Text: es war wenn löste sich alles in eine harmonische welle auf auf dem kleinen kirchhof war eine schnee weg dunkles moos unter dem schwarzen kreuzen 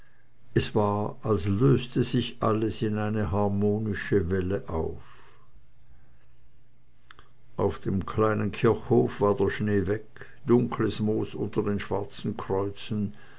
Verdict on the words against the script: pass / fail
fail